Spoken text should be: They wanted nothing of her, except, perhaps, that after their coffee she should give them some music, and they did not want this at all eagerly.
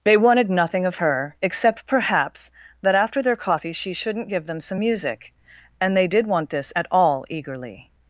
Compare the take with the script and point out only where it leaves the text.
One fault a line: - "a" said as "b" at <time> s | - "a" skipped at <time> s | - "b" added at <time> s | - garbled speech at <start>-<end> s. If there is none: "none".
- "should" said as "shouldn't" at 3.9 s
- "not" skipped at 6.3 s